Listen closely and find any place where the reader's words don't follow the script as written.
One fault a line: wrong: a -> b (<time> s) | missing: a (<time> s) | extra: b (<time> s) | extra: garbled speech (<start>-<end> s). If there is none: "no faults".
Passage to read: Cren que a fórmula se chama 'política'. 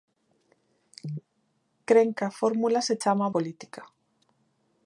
no faults